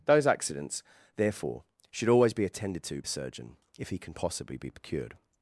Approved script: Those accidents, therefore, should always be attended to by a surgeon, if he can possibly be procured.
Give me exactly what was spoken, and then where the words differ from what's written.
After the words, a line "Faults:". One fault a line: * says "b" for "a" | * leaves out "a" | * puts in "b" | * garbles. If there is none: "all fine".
Those accidents, therefore, should always be attended to a surgeon, if he can possibly be procured.
Faults:
* leaves out "by"